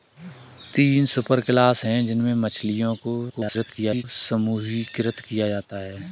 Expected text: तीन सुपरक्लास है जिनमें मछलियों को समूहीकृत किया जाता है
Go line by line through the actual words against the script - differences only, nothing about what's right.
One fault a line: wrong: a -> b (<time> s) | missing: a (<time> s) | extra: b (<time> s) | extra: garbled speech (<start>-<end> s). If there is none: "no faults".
extra: garbled speech (3.3-4.0 s)